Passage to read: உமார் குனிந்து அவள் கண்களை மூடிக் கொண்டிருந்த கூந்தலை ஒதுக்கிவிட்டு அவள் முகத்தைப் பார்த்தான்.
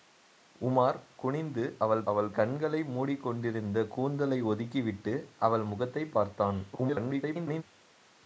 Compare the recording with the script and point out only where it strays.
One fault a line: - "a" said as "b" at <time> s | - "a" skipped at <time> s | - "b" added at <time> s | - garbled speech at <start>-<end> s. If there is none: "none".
- "அவள்" added at 2.0 s
- garbled speech at 6.7-7.6 s